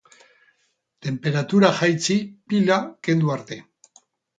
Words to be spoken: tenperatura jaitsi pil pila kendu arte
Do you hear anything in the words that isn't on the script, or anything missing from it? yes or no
yes